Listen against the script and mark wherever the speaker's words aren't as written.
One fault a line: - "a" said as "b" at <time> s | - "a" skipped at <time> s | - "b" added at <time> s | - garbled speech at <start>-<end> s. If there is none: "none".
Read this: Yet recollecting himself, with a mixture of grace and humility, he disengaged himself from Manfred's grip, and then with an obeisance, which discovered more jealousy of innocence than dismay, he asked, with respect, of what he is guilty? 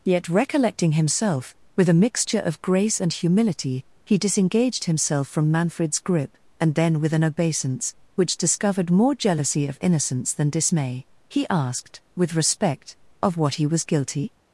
- "is" said as "was" at 13.7 s